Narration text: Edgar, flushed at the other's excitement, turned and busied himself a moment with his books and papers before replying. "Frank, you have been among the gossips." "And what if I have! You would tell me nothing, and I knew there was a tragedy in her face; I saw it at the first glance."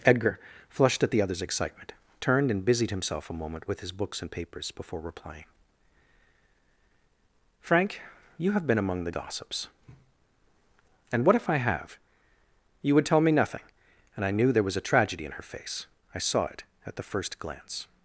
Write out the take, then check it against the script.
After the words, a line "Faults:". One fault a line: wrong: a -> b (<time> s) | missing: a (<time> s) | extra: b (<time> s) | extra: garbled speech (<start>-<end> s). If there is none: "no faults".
Edgar, flushed at the other's excitement, turned and busied himself a moment with his books and papers before replying. "Frank, you have been among the gossips." "And what if I have! You would tell me nothing, and I knew there was a tragedy in her face; I saw it at the first glance."
Faults:
no faults